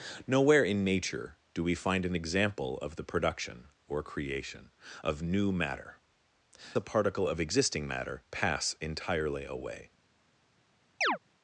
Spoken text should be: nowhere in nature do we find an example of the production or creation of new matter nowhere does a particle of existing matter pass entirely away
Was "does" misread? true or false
true